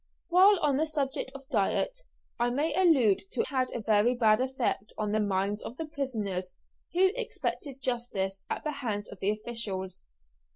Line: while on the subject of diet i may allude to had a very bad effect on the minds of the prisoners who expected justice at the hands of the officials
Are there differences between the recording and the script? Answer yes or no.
no